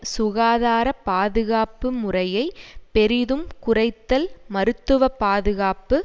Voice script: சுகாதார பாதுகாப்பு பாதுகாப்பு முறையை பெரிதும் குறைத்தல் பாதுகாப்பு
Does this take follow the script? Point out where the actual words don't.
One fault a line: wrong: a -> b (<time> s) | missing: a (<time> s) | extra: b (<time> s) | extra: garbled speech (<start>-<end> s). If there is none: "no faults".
missing: பாதுகாப்பு (1.9 s)
extra: மருத்துவ (4.5 s)